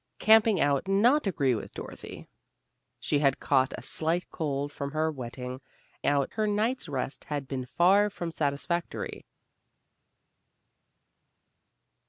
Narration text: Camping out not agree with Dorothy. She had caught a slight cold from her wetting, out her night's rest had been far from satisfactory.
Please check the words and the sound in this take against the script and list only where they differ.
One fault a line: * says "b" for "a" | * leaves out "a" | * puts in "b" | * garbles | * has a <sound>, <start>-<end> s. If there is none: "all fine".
all fine